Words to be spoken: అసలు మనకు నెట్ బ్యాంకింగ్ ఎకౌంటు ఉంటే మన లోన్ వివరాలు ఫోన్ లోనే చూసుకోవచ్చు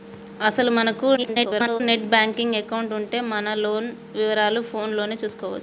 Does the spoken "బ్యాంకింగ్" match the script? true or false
true